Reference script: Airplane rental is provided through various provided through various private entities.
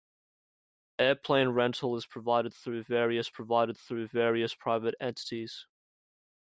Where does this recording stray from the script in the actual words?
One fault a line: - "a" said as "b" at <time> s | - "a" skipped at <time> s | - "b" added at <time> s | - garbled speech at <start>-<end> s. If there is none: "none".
none